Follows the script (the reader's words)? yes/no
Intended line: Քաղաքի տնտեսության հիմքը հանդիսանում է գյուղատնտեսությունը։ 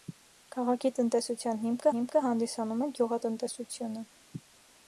no